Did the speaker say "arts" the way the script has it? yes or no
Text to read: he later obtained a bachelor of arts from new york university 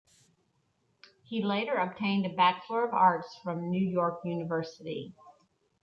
yes